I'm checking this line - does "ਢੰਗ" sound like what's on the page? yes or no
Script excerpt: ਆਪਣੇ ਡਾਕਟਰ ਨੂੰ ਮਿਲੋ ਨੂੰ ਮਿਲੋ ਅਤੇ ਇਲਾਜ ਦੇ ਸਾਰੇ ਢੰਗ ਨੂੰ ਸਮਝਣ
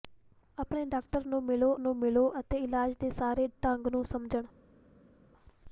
yes